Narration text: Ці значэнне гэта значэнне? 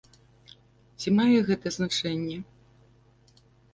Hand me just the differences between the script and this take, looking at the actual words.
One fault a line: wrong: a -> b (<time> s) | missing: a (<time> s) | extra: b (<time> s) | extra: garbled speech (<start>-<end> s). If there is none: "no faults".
wrong: значэнне -> мае (1.2 s)